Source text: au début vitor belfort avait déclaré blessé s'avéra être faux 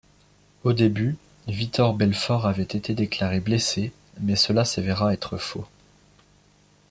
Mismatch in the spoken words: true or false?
true